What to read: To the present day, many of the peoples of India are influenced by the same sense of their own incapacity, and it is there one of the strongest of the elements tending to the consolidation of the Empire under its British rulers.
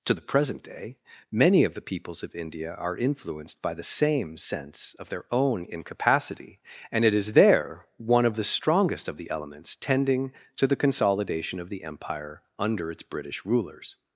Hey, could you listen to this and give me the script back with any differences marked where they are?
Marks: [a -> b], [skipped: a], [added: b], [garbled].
To the present day, many of the peoples of India are influenced by the same sense of their own incapacity, and it is there one of the strongest of the elements tending to the consolidation of the Empire under its British rulers.